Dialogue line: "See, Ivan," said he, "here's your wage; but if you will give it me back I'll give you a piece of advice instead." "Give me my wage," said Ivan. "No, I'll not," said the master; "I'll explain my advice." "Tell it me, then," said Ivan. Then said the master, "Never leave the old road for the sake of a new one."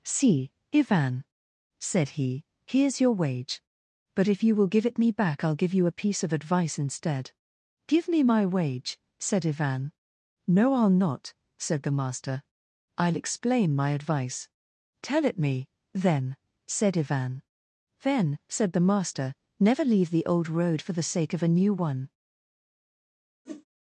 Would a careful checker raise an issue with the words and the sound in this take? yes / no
yes